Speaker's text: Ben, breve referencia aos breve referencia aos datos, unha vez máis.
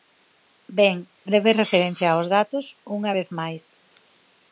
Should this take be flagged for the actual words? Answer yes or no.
yes